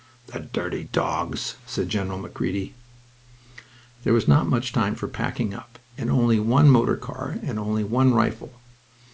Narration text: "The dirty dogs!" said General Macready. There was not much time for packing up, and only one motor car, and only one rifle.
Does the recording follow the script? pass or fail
pass